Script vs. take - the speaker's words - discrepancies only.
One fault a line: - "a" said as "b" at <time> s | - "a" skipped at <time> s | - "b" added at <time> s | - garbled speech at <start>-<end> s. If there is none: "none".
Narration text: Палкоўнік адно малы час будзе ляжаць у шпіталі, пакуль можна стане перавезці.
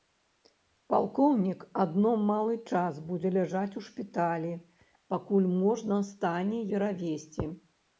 none